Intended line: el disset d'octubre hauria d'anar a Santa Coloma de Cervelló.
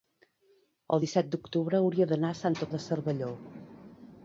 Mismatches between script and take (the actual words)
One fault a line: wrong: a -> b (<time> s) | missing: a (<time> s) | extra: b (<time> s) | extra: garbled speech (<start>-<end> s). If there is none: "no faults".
missing: Coloma (2.7 s)